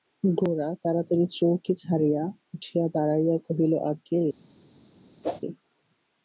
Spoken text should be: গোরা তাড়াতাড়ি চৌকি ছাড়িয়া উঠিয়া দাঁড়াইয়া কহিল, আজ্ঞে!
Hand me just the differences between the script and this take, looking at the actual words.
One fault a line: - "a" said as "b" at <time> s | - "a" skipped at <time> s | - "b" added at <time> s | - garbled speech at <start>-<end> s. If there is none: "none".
none